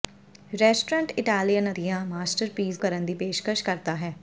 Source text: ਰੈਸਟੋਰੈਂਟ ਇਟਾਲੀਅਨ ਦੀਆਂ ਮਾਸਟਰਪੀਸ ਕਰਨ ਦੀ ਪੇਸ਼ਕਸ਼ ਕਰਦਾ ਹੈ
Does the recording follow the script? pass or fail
pass